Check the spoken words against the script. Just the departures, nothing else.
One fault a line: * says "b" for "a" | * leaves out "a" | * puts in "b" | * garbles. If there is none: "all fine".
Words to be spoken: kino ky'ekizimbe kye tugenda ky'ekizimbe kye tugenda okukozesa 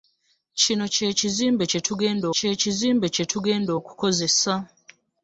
all fine